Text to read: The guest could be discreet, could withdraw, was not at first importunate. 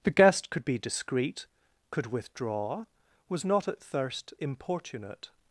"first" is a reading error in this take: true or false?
true